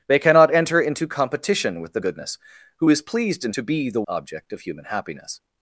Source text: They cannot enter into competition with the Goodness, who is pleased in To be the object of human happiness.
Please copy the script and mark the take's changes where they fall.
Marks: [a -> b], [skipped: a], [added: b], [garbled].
They cannot enter into competition with the Goodness, who is pleased in To be the object of human happiness.